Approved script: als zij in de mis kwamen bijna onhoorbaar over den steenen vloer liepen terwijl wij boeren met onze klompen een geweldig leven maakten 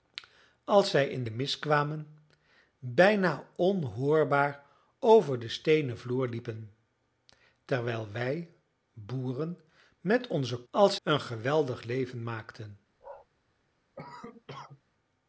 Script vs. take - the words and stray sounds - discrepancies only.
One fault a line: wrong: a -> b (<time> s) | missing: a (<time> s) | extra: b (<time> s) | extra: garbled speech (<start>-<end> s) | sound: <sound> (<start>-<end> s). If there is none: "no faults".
wrong: klompen -> als (10.7 s)
sound: bark (13.0-13.3 s)
sound: cough (14.0-14.8 s)